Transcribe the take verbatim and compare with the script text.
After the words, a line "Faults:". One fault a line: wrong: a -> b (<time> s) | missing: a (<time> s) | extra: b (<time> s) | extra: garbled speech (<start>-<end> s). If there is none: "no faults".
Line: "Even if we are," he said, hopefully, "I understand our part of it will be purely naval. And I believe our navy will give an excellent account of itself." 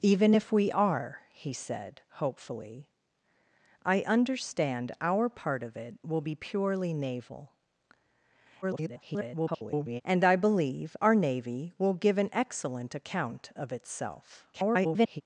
"Even if we are," he said, hopefully, "I understand our part of it will be purely naval. [garbled] And I believe our navy will give an excellent account of itself." [garbled]
Faults:
extra: garbled speech (8.6-10.0 s)
extra: garbled speech (14.5-15.2 s)